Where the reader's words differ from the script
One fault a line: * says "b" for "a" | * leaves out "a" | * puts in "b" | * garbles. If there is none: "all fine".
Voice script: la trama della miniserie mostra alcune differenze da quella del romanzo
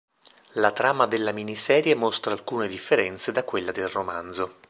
all fine